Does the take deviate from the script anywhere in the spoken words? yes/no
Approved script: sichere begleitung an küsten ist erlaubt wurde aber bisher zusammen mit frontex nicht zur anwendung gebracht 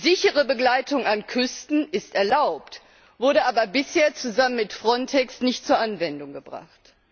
no